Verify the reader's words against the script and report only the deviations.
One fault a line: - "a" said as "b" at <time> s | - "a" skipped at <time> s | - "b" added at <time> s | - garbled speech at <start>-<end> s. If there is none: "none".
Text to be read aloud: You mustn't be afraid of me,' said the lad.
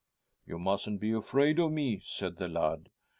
none